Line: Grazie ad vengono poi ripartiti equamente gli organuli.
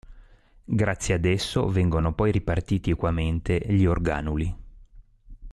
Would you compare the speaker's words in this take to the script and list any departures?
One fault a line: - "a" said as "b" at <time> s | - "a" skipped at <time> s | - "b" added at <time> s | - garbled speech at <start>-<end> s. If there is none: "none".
- "esso" added at 1.2 s